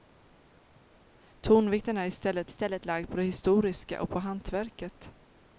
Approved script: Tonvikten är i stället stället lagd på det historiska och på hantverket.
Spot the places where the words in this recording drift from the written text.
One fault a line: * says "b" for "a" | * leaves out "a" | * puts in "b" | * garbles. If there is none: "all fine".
all fine